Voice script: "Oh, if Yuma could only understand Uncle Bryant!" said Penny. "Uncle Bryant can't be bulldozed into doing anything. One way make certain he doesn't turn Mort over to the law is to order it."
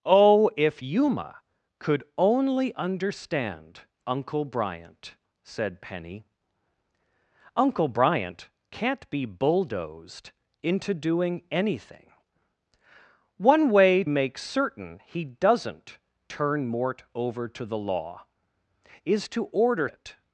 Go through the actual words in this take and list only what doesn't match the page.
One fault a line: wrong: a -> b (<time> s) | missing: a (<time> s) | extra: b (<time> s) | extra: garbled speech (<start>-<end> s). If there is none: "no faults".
no faults